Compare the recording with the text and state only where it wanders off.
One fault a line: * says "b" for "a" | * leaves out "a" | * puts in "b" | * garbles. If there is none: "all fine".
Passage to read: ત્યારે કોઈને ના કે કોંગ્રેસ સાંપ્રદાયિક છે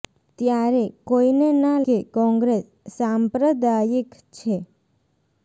all fine